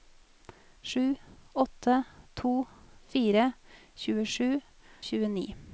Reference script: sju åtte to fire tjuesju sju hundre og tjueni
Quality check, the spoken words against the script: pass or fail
fail